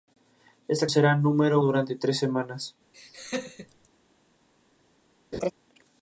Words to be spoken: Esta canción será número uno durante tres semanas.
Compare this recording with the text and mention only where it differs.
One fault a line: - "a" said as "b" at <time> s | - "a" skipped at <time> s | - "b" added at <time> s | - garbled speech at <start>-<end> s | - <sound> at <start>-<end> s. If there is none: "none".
- "canción" skipped at 0.9 s
- "uno" skipped at 1.6 s
- laugh at 2.9-3.9 s
- laugh at 5.3-5.5 s